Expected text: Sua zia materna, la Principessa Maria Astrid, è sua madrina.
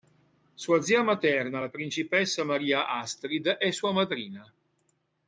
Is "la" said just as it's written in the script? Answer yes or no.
yes